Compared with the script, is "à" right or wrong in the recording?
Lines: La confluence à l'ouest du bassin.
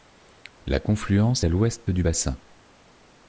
right